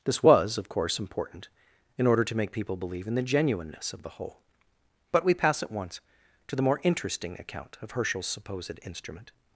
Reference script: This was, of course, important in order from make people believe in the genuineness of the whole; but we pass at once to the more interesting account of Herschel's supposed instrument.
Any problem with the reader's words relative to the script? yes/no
yes